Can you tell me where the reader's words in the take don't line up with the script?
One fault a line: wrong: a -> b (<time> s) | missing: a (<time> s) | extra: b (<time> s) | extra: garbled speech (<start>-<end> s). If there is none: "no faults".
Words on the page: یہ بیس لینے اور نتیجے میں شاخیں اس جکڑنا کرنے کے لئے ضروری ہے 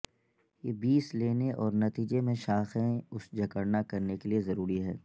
no faults